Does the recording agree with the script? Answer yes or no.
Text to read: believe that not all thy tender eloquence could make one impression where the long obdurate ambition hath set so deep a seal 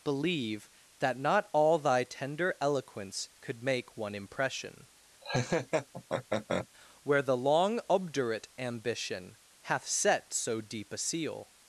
yes